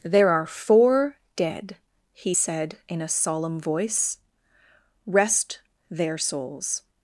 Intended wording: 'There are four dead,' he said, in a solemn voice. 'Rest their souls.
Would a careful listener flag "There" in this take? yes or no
no